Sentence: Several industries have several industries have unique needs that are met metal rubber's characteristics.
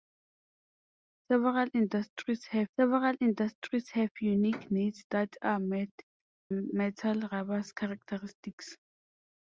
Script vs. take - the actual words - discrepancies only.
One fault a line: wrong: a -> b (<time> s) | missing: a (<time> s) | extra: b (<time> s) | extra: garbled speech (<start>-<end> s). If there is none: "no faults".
no faults